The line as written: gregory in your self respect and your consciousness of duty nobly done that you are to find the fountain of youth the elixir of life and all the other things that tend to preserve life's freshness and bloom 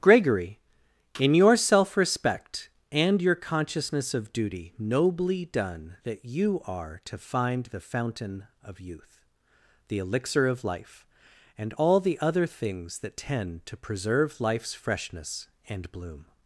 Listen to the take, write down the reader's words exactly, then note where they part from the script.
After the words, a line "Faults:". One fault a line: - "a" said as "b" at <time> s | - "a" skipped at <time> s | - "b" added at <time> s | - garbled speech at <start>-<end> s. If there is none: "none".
gregory in your self respect and your consciousness of duty nobly done that you are to find the fountain of youth the elixir of life and all the other things that tend to preserve life's freshness and bloom
Faults:
none